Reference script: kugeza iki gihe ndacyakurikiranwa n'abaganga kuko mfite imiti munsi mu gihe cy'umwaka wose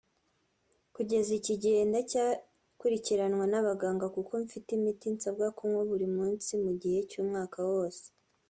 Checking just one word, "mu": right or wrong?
right